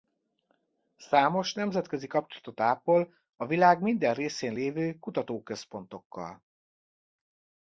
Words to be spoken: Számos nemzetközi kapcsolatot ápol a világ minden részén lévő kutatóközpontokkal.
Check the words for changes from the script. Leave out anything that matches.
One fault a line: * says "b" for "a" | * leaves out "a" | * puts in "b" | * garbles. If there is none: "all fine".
all fine